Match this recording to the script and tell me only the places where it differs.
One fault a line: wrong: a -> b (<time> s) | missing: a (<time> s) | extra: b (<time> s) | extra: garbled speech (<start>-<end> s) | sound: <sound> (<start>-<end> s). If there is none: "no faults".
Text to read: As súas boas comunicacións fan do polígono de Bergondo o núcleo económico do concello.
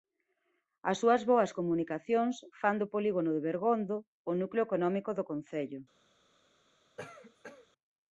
sound: cough (7.0-7.7 s)